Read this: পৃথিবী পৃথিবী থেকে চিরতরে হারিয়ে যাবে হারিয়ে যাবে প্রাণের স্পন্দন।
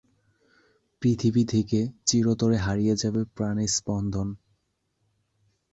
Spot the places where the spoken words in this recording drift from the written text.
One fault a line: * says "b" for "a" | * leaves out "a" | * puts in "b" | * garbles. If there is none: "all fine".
* leaves out "পৃথিবী"
* leaves out "হারিয়ে যাবে"